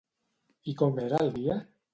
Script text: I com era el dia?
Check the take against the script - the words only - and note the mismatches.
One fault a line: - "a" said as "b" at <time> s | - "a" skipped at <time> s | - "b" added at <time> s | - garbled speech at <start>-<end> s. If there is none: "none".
none